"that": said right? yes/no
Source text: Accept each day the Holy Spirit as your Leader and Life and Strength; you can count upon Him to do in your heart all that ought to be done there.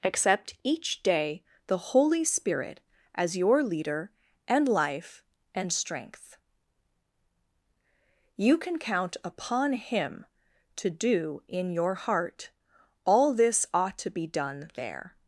no